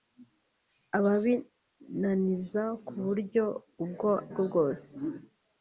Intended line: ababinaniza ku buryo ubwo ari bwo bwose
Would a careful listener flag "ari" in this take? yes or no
yes